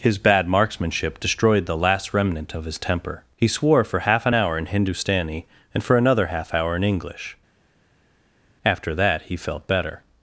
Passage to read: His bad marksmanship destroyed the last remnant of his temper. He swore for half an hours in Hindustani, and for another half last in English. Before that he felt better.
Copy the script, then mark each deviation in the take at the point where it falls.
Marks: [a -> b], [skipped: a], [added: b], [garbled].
His bad marksmanship destroyed the last remnant of his temper. He swore for half an [hours -> hour] in Hindustani, and for another half [last -> hour] in English. [Before -> After] that he felt better.